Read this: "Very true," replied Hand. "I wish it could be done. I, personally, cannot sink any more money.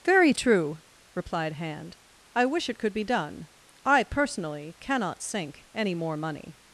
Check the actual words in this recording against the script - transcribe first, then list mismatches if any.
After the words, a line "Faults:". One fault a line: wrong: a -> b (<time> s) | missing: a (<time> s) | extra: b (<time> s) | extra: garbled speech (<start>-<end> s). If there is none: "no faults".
"Very true," replied Hand. "I wish it could be done. I, personally, cannot sink any more money.
Faults:
no faults